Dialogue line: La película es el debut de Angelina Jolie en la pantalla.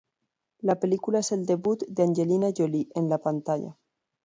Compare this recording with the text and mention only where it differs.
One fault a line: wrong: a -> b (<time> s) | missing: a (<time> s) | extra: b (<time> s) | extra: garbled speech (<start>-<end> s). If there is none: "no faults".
no faults